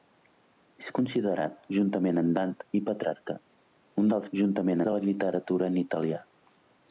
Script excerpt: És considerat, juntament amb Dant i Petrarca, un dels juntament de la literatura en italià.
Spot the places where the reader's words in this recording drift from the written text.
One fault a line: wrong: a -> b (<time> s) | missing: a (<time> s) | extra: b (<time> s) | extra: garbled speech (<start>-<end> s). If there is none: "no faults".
no faults